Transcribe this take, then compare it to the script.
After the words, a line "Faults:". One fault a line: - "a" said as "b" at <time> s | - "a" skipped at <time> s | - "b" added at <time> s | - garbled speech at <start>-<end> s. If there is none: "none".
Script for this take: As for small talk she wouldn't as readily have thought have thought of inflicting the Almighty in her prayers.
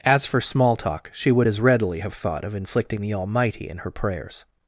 As for small talk she would as readily have thought of inflicting the Almighty in her prayers.
Faults:
- "wouldn't" said as "would" at 1.3 s
- "have thought" skipped at 2.4 s